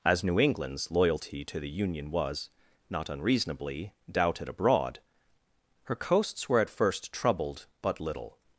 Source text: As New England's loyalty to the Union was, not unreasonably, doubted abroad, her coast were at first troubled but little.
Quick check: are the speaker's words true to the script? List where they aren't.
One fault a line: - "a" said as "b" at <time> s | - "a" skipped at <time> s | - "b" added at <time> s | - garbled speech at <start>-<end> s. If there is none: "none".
- "coast" said as "coasts" at 6.0 s